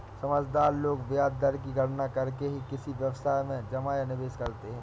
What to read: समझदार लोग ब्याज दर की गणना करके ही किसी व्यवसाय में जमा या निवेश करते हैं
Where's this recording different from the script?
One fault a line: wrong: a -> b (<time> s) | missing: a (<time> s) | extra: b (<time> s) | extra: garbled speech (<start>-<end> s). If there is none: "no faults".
no faults